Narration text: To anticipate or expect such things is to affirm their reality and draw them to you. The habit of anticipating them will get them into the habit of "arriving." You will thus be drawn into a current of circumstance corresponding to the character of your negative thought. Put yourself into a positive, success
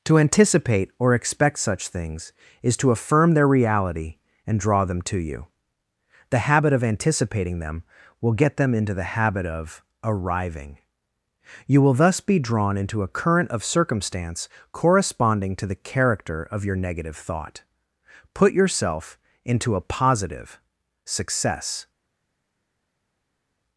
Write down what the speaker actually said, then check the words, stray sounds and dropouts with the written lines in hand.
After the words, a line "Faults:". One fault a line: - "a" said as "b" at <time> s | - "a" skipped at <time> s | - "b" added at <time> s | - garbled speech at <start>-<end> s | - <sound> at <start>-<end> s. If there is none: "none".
To anticipate or expect such things is to affirm their reality and draw them to you. The habit of anticipating them will get them into the habit of "arriving." You will thus be drawn into a current of circumstance corresponding to the character of your negative thought. Put yourself into a positive, success
Faults:
none